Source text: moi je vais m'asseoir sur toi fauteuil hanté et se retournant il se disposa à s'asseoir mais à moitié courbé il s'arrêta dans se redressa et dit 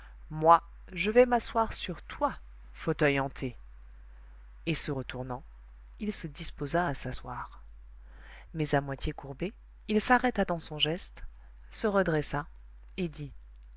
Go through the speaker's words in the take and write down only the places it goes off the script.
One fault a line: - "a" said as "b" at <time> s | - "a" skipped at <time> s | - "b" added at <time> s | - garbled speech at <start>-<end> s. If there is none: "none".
- "son geste" added at 10.6 s